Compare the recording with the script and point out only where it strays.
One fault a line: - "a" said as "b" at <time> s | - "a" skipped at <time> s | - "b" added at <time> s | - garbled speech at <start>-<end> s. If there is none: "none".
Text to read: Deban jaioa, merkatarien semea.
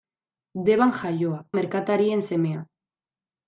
none